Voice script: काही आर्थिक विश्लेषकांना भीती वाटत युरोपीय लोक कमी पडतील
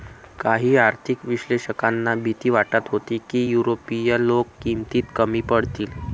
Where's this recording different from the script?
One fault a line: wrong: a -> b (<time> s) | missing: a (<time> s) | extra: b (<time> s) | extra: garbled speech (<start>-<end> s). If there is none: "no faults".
extra: होती की (2.9 s)
extra: किमतीत (4.6 s)